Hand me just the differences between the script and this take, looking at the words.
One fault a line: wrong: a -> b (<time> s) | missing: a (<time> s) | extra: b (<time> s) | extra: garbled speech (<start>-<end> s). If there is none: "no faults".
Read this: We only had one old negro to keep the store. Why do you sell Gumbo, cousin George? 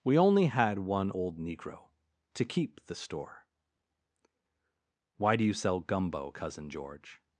no faults